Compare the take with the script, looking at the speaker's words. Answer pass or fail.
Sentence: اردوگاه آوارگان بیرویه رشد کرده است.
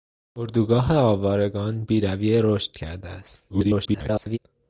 fail